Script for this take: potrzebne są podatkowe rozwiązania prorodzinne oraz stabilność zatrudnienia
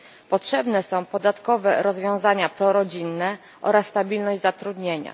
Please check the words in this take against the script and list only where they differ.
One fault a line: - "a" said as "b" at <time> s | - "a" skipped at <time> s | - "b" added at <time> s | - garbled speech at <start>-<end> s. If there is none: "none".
none